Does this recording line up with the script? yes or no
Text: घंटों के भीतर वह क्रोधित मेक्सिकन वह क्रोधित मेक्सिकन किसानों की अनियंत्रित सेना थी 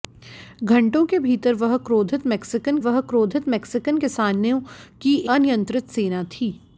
yes